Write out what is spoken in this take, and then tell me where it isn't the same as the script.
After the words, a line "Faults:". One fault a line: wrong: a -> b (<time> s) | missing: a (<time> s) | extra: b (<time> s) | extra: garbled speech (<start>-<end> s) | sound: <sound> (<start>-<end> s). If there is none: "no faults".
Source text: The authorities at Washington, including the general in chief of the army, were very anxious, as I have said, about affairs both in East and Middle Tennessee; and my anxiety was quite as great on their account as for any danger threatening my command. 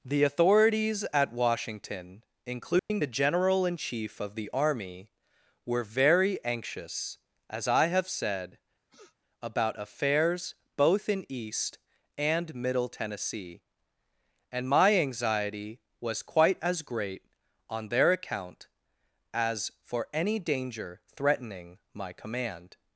The authorities at Washington, including the general in chief of the army, were very anxious, as I have said, about affairs both in East and Middle Tennessee; and my anxiety was quite as great on their account as for any danger threatening my command.
Faults:
sound: dropout (2.8-2.9 s)
sound: sniff (8.9-9.2 s)